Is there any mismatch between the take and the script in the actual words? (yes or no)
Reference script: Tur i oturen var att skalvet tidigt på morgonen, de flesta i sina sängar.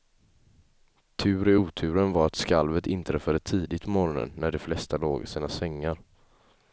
yes